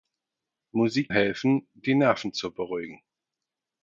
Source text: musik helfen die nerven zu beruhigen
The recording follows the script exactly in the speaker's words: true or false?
true